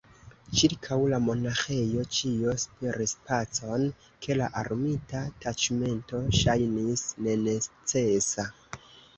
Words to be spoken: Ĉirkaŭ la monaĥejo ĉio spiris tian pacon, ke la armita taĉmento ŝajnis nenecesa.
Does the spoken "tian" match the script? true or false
false